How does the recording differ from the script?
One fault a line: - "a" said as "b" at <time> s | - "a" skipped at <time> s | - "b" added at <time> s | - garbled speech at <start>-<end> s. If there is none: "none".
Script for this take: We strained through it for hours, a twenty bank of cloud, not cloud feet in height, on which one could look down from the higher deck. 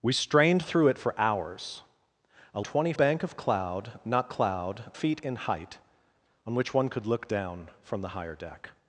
none